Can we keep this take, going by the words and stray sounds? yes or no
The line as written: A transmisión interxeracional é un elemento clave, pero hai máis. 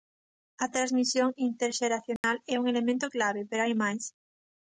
no